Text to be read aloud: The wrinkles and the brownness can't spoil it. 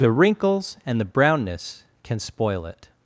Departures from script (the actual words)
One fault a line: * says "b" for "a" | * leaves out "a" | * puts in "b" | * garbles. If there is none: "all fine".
* says "can" for "can't"